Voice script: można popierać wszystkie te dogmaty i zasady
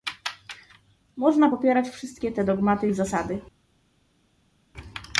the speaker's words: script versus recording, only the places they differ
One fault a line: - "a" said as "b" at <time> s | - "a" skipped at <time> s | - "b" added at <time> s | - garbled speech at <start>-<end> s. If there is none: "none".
none